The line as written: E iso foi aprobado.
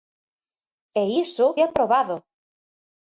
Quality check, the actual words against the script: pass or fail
fail